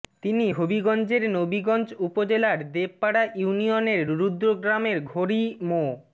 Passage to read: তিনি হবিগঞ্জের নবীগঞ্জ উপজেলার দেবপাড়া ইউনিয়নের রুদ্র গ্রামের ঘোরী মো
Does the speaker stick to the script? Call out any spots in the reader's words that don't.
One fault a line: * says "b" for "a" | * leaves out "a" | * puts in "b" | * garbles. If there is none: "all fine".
all fine